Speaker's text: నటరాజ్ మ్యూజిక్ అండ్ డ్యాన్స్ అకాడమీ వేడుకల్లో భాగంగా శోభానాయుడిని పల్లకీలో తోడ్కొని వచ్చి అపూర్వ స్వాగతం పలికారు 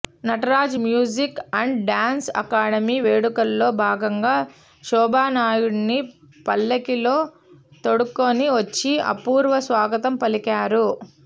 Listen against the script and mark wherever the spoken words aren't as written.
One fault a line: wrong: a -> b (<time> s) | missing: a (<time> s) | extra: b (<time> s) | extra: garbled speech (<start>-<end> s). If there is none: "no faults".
no faults